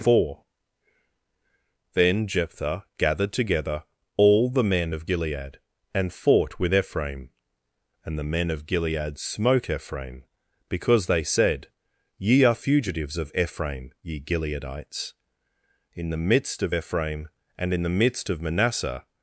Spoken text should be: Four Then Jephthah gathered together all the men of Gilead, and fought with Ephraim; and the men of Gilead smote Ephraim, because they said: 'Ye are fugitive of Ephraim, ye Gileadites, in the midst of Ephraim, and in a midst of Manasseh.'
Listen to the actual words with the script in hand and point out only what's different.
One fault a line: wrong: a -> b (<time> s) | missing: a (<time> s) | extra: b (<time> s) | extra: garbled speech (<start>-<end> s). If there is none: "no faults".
wrong: fugitive -> fugitives (12.5 s)
wrong: a -> the (17.8 s)